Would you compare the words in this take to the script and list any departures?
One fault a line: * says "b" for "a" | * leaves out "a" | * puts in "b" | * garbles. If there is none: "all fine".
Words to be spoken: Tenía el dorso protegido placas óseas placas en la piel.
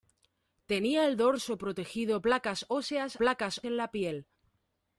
all fine